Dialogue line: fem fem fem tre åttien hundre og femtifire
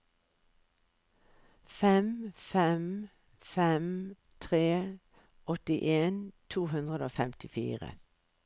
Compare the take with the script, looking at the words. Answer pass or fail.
fail